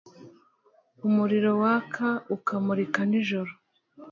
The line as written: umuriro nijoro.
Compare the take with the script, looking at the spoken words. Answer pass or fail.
fail